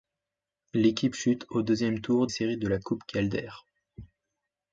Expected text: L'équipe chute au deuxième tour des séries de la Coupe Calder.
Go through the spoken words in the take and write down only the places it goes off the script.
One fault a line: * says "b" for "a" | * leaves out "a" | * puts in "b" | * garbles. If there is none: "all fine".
* leaves out "des"